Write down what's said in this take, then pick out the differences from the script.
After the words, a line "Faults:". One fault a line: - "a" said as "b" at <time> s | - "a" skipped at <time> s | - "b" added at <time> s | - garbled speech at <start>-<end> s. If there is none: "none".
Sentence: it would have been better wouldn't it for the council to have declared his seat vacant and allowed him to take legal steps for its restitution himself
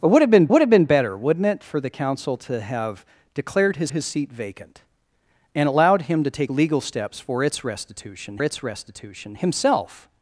it would have been would have been better wouldn't it for the council to have declared his his seat vacant and allowed him to take legal steps for its restitution its restitution himself
Faults:
- "would have been" added at 0.5 s
- "his" added at 3.9 s
- "its restitution" added at 8.4 s